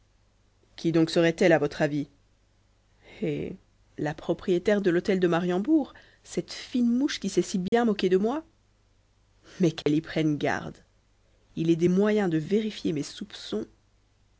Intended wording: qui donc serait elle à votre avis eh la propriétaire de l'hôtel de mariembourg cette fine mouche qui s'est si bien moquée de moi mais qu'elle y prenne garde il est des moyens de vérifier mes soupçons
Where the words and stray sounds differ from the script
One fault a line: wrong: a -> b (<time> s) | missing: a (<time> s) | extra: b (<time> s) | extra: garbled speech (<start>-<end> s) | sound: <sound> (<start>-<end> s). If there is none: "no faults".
sound: dropout (7.7-7.7 s)
sound: dropout (9.8-9.9 s)